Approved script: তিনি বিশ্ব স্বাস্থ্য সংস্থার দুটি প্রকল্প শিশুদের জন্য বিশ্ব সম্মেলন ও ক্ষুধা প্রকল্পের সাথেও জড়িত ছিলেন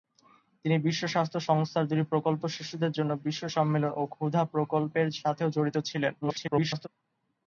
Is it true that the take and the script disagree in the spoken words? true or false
true